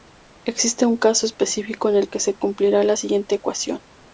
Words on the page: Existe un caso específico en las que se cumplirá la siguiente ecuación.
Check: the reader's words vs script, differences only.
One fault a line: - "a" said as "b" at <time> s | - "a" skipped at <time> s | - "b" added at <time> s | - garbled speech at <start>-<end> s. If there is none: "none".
- "las" said as "el" at 1.9 s